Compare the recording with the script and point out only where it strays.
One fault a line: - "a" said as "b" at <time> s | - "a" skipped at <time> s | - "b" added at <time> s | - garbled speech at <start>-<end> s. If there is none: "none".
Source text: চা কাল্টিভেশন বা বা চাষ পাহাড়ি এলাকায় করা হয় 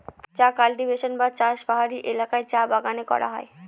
- "বা" skipped at 1.3 s
- "চা বাগানে" added at 2.5 s